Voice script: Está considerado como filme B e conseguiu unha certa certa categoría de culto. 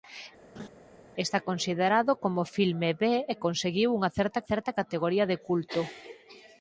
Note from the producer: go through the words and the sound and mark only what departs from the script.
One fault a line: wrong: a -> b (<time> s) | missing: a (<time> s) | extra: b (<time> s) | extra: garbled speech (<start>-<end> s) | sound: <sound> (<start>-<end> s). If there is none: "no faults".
sound: laugh (0.6-0.7 s)